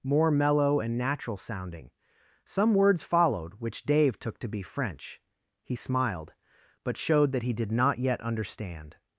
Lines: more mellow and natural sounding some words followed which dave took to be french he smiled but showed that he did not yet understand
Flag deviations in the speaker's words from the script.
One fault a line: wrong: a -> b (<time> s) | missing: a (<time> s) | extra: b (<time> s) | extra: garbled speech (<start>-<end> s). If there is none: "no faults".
no faults